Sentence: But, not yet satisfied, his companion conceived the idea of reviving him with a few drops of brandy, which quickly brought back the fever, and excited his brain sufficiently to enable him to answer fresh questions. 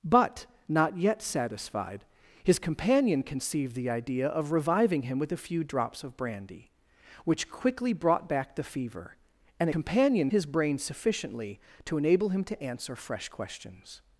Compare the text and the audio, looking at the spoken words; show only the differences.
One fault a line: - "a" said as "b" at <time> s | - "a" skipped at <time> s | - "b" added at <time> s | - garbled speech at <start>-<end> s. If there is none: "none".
- "excited" said as "companion" at 9.7 s